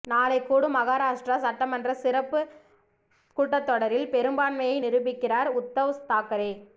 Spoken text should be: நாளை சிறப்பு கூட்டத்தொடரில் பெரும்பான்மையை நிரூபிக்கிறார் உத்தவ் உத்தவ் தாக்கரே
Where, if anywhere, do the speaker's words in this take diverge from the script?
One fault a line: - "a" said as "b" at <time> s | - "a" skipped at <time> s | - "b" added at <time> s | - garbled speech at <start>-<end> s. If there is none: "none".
- "கூடும் மகாராஷ்டிரா சட்டமன்ற" added at 0.4 s
- "உத்தவ்" skipped at 5.9 s